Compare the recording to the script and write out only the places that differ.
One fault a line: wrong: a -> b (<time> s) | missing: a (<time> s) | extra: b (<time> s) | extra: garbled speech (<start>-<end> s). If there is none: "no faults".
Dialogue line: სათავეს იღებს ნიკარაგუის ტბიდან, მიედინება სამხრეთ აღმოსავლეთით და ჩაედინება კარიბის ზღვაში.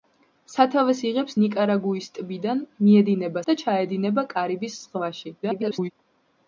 missing: სამხრეთ აღმოსავლეთით (3.4 s)
extra: garbled speech (5.4-5.9 s)